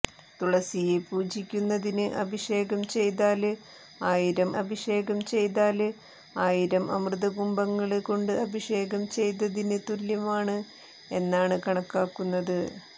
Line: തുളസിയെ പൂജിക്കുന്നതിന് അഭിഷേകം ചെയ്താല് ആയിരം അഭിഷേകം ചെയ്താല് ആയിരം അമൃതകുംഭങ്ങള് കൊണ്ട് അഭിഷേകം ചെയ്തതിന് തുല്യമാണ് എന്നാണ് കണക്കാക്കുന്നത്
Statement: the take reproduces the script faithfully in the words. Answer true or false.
true